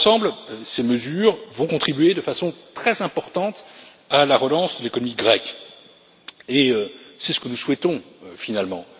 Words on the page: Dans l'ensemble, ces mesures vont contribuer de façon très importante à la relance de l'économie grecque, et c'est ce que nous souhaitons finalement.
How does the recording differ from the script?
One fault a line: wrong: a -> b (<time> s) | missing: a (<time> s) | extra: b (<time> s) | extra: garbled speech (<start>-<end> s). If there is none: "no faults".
no faults